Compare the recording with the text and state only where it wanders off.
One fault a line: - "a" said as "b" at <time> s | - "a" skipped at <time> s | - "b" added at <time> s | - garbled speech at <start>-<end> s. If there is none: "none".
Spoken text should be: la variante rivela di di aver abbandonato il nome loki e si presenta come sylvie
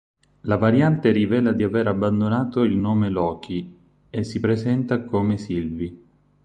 - "di" skipped at 1.6 s